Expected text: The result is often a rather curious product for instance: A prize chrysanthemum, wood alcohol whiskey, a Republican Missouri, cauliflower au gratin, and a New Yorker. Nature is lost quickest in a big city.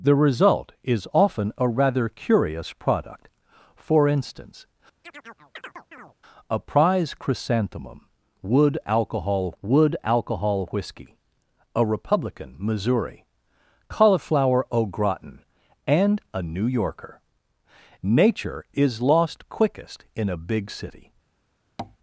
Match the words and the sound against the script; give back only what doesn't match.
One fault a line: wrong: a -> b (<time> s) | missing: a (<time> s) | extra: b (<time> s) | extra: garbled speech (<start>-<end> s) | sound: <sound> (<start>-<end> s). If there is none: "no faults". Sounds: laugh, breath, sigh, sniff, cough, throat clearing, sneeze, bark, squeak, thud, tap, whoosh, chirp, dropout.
sound: chirp (5.0-6.1 s)
extra: wood alcohol (9.6 s)
sound: tap (21.8-22.0 s)